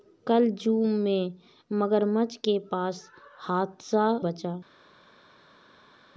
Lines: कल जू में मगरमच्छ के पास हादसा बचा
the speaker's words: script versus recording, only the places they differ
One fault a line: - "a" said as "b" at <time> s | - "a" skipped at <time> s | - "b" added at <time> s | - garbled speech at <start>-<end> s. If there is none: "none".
none